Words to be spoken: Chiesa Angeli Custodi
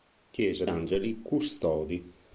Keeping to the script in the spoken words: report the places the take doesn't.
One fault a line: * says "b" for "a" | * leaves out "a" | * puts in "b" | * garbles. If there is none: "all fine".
all fine